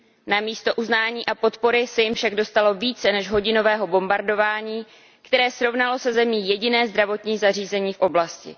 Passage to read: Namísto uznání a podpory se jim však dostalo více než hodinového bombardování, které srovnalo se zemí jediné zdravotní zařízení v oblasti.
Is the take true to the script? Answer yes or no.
yes